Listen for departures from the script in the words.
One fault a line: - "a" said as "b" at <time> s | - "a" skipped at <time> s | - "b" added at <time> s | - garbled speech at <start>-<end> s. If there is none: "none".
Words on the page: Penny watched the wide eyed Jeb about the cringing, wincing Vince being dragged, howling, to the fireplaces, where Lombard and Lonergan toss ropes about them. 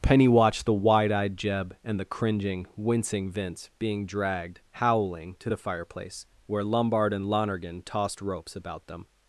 - "about" said as "and" at 1.8 s
- "fireplaces" said as "fireplace" at 5.6 s
- "toss" said as "tossed" at 7.8 s